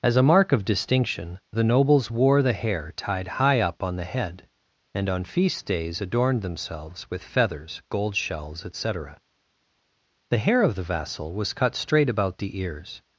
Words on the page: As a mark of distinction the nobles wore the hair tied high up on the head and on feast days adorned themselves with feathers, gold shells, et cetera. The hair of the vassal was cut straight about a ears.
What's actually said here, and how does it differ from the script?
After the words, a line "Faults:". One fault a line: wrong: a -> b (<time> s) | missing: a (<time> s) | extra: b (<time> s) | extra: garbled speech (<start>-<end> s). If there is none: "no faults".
As a mark of distinction the nobles wore the hair tied high up on the head and on feast days adorned themselves with feathers, gold shells, et cetera. The hair of the vassal was cut straight about the ears.
Faults:
wrong: a -> the (12.4 s)